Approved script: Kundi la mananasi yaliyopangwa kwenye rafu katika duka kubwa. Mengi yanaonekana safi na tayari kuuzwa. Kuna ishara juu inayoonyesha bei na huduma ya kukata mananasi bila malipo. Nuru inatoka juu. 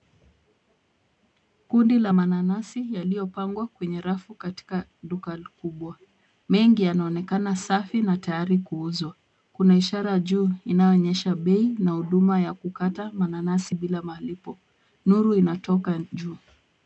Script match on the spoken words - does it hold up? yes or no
yes